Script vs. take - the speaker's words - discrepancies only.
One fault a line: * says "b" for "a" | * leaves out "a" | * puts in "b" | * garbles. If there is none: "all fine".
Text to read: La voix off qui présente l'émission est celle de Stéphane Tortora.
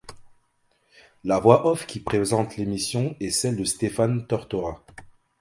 all fine